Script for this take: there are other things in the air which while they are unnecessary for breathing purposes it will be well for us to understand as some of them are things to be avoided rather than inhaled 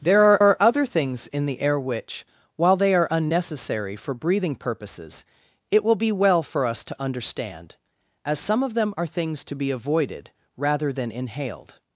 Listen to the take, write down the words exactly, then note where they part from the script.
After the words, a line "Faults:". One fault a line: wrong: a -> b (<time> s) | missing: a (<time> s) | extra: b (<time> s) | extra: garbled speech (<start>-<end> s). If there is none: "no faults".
there are are other things in the air which while they are unnecessary for breathing purposes it will be well for us to understand as some of them are things to be avoided rather than inhaled
Faults:
extra: are (0.4 s)